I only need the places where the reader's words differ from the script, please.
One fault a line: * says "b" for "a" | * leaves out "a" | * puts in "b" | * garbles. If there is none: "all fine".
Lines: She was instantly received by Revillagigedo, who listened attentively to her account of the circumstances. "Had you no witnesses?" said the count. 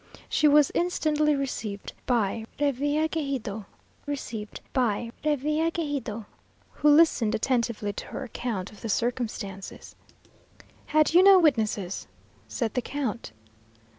* puts in "received by Revillagigedo"